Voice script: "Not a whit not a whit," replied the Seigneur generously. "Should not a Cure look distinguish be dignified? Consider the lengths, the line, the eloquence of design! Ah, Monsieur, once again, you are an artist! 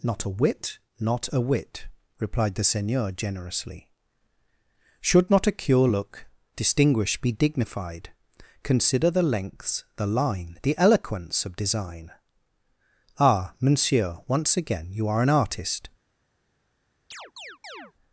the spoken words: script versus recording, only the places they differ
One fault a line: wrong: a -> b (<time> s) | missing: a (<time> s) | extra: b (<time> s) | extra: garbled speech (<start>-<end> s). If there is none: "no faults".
no faults